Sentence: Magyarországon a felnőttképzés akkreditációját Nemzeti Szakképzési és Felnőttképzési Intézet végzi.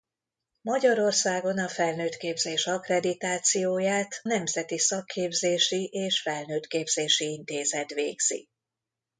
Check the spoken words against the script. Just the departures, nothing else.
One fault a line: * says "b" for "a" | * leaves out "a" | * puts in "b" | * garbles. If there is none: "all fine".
all fine